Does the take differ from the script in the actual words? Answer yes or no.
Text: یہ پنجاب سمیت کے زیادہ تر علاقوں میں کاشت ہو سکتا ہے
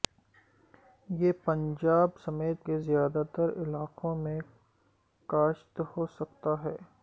no